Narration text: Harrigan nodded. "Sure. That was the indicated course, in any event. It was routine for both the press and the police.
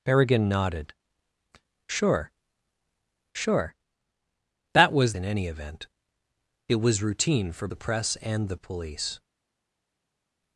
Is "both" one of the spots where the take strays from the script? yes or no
yes